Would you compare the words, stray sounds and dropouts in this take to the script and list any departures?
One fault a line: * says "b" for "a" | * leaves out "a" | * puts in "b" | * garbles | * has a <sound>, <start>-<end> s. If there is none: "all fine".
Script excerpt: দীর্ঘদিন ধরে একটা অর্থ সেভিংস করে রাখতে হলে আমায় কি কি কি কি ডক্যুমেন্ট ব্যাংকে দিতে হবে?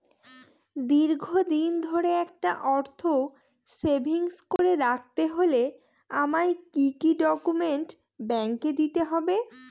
* has a dropout, 4.6-4.6 s
* leaves out "কি কি"